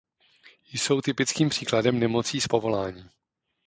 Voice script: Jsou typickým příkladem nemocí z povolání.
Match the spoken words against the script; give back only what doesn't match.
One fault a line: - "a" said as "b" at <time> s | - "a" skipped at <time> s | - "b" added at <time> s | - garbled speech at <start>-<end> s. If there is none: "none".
none